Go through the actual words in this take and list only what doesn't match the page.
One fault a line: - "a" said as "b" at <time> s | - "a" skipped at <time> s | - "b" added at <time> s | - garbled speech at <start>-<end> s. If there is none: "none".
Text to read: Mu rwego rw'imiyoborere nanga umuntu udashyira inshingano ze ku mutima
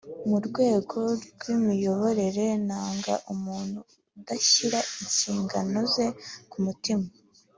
none